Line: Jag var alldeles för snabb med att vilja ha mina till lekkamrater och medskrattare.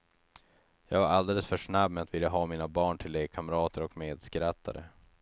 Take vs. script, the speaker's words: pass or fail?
fail